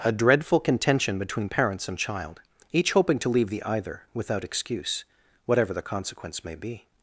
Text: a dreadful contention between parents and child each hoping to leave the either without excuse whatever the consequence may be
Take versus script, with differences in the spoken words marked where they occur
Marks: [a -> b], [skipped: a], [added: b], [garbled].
a dreadful contention between parents and child each hoping to leave the either without excuse whatever the consequence may be